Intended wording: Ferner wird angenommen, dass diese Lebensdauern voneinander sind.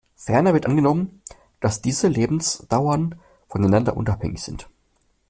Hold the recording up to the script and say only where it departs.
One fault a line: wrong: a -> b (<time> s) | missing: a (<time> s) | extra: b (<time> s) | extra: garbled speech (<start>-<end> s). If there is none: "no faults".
extra: unabhängig (4.0 s)